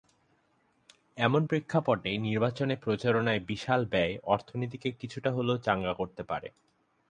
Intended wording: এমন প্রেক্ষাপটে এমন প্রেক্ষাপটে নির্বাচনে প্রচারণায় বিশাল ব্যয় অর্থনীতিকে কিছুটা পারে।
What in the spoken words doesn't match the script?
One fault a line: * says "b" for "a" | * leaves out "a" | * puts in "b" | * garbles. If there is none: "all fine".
* leaves out "এমন প্রেক্ষাপটে"
* puts in "হলেও চাঙা করতে"